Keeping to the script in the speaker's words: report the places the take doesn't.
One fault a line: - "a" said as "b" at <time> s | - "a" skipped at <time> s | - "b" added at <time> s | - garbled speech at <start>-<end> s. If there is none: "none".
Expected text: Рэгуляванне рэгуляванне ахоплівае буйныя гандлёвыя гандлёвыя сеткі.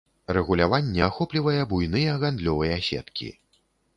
- "рэгуляванне" skipped at 1.0 s
- "гандлёвыя" skipped at 2.8 s